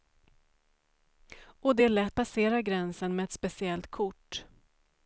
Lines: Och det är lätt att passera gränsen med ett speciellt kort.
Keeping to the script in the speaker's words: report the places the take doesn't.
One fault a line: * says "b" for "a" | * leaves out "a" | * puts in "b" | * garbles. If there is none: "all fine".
* leaves out "att"